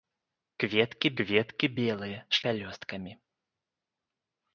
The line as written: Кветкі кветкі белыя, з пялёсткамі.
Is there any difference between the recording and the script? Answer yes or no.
no